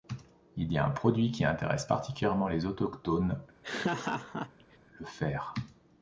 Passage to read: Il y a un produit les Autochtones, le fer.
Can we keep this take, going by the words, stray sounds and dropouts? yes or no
no